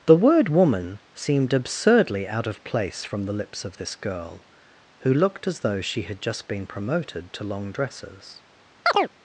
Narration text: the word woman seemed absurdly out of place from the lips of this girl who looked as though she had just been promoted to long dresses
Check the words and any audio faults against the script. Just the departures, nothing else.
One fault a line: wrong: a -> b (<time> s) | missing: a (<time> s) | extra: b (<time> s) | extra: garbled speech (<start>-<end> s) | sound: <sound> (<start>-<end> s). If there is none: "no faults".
sound: chirp (8.9-9.1 s)